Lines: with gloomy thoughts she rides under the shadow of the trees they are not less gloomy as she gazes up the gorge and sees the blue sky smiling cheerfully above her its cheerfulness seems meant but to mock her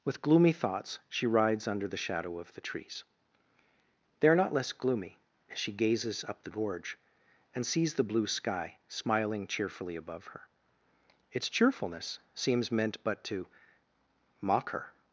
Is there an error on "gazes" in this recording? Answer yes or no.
no